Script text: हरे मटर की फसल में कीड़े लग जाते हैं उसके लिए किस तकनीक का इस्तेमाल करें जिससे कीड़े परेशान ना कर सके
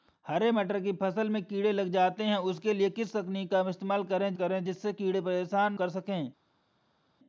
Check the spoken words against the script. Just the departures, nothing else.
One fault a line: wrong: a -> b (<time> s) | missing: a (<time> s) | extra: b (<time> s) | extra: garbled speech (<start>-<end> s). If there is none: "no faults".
extra: करें (4.3 s)
missing: ना (5.7 s)